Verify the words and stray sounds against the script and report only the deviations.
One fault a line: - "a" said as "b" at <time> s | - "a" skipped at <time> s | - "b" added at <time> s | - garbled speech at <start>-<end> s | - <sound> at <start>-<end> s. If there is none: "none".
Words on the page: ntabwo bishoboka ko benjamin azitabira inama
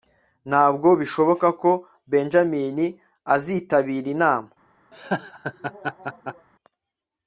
- laugh at 4.9-6.5 s